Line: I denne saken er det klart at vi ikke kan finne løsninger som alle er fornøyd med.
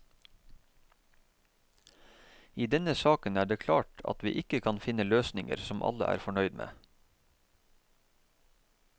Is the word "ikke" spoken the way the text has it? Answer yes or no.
yes